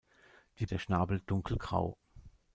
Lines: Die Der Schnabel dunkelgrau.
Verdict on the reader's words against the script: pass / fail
pass